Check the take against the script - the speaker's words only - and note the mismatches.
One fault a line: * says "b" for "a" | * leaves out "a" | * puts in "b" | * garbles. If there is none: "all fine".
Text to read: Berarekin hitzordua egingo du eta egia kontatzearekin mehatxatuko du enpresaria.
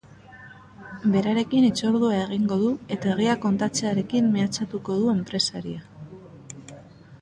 all fine